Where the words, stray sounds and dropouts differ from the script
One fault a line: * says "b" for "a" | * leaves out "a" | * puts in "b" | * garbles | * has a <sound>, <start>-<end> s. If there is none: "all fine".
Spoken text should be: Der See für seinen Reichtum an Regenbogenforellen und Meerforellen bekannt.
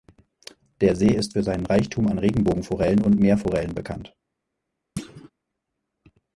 * puts in "ist"
* has a thud, 5.0-5.3 s